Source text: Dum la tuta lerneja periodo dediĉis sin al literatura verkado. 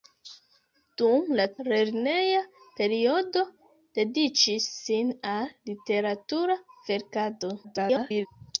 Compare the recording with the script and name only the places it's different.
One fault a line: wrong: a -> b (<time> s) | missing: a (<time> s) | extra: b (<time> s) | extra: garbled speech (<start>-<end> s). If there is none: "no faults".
missing: tuta (1.4 s)
extra: garbled speech (7.6-8.3 s)